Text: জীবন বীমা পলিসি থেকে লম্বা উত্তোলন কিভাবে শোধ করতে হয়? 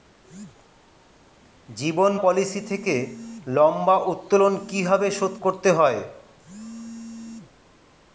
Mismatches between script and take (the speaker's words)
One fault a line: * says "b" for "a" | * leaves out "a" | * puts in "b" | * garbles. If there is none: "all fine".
* leaves out "বীমা"